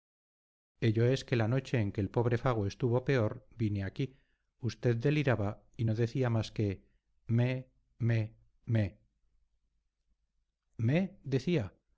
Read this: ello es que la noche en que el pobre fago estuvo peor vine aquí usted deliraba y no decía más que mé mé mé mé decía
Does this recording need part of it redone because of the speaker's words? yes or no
no